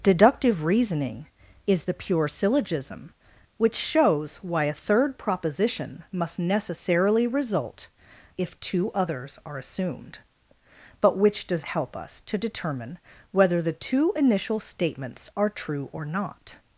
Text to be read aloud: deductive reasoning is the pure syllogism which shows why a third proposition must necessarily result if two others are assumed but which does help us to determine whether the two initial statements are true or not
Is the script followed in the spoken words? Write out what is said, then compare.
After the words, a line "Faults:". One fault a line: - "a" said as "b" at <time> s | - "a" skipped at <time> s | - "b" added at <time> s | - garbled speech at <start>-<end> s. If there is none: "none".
deductive reasoning is the pure syllogism which shows why a third proposition must necessarily result if two others are assumed but which does help us to determine whether the two initial statements are true or not
Faults:
none